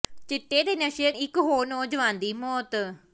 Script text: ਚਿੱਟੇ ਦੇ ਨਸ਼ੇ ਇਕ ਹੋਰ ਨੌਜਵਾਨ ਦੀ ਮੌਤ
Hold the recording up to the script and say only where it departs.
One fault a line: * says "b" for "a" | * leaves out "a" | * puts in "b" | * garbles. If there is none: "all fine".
all fine